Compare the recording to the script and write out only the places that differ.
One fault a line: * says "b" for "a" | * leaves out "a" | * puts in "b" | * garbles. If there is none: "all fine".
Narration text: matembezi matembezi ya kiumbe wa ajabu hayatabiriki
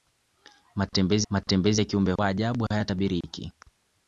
all fine